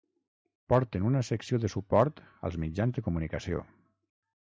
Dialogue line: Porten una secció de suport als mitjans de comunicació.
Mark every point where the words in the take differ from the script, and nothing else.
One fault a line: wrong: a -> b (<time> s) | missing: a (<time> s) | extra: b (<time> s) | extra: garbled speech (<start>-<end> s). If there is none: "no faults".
no faults